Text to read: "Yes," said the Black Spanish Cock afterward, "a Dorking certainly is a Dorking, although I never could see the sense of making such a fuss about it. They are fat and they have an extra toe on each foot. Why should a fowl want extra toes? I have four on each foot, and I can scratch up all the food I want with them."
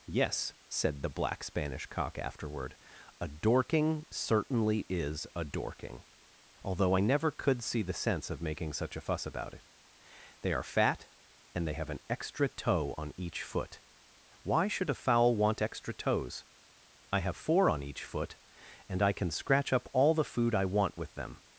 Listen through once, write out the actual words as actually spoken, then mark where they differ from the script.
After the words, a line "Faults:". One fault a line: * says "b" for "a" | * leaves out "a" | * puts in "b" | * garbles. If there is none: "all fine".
"Yes," said the Black Spanish Cock afterward, "a Dorking certainly is a Dorking, although I never could see the sense of making such a fuss about it. They are fat and they have an extra toe on each foot. Why should a fowl want extra toes? I have four on each foot, and I can scratch up all the food I want with them."
Faults:
all fine